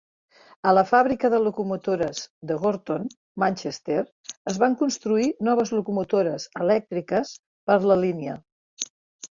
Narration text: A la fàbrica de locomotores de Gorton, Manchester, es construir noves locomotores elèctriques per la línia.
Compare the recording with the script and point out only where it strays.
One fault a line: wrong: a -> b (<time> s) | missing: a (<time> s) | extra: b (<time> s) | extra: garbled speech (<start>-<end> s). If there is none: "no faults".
extra: van (4.7 s)